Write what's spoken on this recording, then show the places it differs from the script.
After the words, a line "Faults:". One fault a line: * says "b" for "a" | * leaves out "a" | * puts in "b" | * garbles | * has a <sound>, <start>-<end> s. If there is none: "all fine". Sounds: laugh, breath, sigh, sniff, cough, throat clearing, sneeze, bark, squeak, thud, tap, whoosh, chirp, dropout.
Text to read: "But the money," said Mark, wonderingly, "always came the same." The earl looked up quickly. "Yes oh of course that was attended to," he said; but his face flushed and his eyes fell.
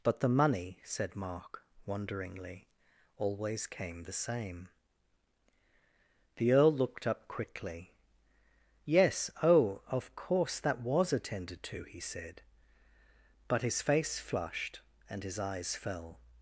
"But the money," said Mark, wonderingly, "always came the same." The earl looked up quickly. "Yes oh of course that was attended to," he said; but his face flushed and his eyes fell.
Faults:
all fine